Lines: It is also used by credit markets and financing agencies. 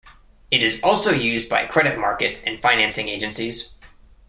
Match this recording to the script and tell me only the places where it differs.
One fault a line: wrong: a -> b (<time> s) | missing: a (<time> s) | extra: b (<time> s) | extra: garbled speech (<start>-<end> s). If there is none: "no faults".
no faults